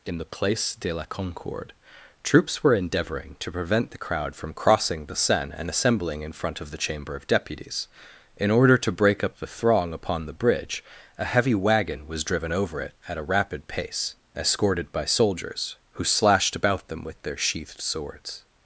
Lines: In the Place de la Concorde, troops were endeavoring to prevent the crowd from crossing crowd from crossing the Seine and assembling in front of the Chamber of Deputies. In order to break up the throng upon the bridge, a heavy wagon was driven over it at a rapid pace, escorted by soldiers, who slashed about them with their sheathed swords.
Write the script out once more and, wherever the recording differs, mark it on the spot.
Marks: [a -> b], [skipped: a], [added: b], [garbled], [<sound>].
In the Place de la Concorde, troops were endeavoring to prevent the crowd from crossing [skipped: crowd from crossing] the Seine and assembling in front of the Chamber of Deputies. In order to break up the throng upon the bridge, a heavy wagon was driven over it at a rapid pace, escorted by soldiers, who slashed about them with their sheathed swords.